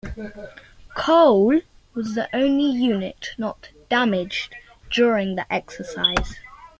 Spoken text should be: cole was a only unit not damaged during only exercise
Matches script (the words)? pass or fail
fail